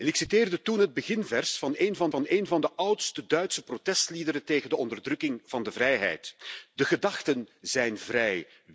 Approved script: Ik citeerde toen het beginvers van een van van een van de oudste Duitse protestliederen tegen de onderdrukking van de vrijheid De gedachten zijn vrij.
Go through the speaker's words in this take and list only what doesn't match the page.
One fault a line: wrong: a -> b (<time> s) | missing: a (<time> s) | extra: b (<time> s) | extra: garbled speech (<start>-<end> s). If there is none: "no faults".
no faults